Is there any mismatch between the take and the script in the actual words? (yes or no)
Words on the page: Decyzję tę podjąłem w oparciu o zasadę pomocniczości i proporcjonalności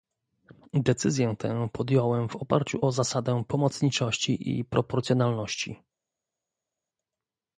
no